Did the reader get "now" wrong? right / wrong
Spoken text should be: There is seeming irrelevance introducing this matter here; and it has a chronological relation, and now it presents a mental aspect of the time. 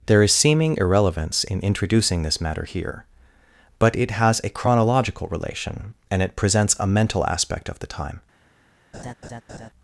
wrong